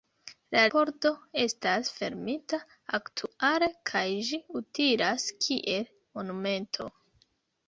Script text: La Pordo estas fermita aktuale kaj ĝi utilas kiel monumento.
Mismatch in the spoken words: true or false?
false